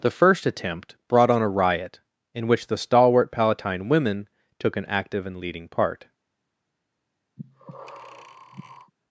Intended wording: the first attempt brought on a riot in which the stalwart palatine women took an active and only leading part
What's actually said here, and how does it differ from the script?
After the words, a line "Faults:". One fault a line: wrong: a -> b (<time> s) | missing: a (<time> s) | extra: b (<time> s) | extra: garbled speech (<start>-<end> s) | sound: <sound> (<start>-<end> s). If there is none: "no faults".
the first attempt brought on a riot in which the stalwart palatine women took an active and leading part
Faults:
missing: only (5.4 s)
sound: breath (7.4-8.9 s)